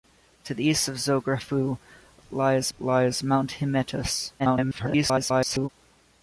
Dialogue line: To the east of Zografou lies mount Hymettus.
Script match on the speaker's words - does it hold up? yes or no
no